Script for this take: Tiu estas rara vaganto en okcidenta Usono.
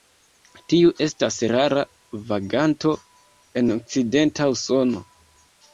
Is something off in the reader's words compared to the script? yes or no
no